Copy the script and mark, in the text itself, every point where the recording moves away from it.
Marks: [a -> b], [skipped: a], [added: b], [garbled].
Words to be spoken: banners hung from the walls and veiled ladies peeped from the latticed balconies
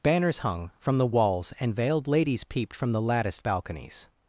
banners hung from the walls and veiled ladies peeped from the latticed balconies